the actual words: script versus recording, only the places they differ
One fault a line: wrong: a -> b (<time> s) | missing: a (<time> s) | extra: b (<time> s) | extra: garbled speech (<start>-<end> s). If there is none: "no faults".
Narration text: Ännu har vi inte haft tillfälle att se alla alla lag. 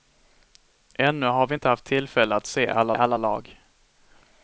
no faults